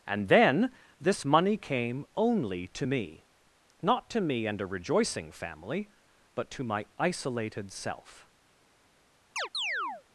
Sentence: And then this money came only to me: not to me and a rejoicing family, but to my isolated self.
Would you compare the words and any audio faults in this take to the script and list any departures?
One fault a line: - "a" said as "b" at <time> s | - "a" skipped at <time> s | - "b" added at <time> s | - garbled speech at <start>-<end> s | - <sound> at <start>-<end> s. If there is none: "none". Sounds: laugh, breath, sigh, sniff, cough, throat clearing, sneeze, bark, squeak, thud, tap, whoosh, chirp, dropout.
- chirp at 9.4-10.0 s